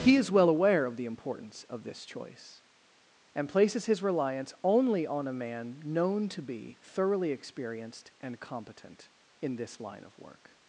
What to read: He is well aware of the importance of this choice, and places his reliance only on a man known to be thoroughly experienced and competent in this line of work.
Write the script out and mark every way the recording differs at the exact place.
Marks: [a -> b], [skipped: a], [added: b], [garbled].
He is well aware of the importance of this choice, and places his reliance only on a man known to be thoroughly experienced and competent in this line of work.